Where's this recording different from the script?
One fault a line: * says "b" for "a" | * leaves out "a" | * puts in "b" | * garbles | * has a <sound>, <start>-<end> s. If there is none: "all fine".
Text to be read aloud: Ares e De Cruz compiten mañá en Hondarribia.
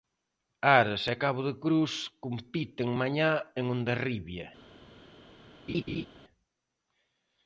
* puts in "Cabo"
* has a laugh, 5.7-6.1 s